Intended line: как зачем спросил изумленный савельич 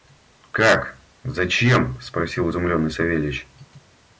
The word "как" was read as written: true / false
true